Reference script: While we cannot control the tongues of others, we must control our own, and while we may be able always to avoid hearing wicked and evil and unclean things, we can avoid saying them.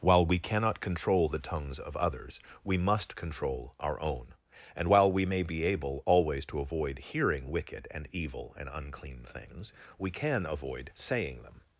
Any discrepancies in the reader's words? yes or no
no